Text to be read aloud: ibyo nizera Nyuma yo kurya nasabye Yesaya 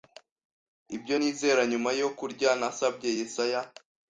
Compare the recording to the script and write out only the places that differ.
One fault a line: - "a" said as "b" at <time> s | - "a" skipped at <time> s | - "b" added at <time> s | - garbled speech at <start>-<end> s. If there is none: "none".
none